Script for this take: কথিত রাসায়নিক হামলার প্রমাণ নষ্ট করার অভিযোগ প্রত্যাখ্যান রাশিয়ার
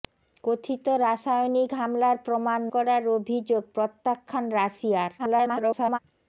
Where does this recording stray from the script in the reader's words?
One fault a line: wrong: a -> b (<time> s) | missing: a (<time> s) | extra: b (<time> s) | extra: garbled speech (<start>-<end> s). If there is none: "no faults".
missing: নষ্ট (2.6 s)
extra: garbled speech (5.2-6.0 s)